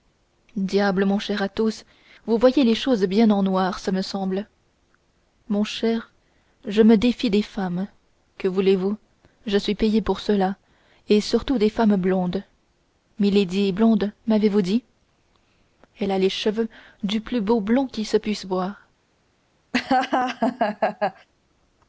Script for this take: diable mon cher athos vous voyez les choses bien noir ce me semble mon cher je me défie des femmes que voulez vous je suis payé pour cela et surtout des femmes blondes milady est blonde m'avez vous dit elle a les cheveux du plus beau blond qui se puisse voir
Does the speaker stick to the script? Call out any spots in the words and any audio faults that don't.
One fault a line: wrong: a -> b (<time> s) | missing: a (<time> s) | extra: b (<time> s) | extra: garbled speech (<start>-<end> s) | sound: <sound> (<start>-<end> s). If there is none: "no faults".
extra: en (3.3 s)
sound: laugh (19.7-21.3 s)